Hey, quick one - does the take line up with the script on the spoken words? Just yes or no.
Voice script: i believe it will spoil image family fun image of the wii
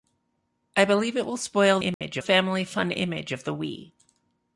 yes